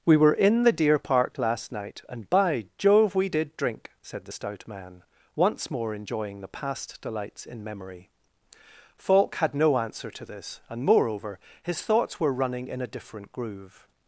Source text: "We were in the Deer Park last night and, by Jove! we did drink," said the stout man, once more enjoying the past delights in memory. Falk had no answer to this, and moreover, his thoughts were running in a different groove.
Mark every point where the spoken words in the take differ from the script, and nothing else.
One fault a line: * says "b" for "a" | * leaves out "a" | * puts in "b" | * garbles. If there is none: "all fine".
all fine